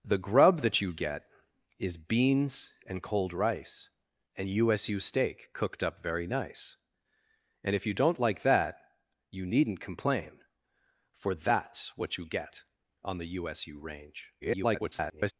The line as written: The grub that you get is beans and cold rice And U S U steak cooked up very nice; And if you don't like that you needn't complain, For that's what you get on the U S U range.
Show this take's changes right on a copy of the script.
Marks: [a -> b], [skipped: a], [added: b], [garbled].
The grub that you get is beans and cold rice And U S U steak cooked up very nice; And if you don't like that you needn't complain, For that's what you get on the U S U range. [garbled]